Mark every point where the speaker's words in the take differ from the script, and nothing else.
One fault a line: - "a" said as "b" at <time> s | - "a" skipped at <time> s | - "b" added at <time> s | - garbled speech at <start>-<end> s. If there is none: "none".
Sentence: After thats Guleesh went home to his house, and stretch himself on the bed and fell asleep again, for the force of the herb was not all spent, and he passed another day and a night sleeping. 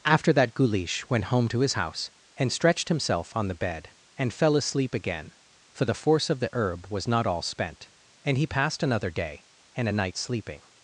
- "thats" said as "that" at 0.3 s
- "stretch" said as "stretched" at 2.5 s